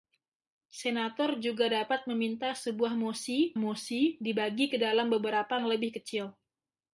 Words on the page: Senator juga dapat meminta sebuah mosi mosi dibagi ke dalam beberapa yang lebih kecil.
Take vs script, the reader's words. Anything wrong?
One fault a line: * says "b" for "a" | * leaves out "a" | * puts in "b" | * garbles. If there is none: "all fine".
all fine